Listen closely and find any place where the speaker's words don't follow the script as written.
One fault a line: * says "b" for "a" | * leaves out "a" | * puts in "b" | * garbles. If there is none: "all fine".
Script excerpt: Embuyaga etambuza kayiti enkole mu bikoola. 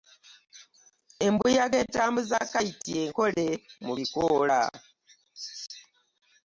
all fine